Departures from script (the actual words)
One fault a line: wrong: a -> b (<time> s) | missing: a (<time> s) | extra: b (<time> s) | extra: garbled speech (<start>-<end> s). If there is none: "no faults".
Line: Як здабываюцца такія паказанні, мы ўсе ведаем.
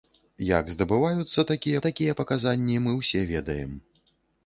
extra: такія (1.9 s)